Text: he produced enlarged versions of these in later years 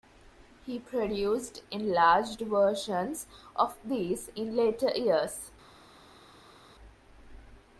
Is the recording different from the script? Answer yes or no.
no